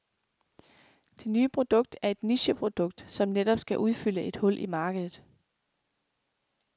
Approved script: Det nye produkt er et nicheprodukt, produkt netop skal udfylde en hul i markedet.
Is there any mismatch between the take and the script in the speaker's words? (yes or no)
yes